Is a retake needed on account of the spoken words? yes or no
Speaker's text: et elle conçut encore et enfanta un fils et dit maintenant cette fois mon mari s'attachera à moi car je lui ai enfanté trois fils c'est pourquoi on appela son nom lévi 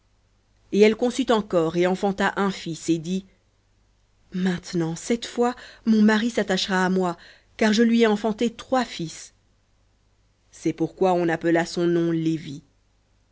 no